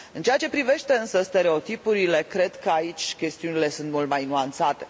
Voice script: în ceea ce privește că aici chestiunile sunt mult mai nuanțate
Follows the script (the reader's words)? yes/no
no